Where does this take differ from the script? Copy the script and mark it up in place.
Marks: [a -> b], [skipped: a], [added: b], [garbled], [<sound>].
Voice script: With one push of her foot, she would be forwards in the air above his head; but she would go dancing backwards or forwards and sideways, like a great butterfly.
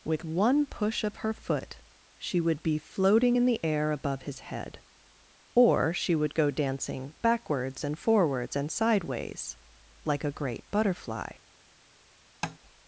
With one push of her foot, she would be [forwards -> floating] in the air above his head; [but -> or] she would go dancing backwards [or -> and] forwards and sideways, like a great butterfly. [tap]